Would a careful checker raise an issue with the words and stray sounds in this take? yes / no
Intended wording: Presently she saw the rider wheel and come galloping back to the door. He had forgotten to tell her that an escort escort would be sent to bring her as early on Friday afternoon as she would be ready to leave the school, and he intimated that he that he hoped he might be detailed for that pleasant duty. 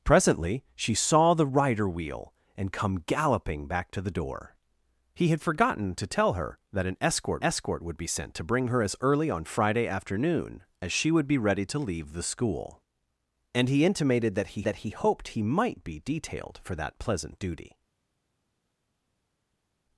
no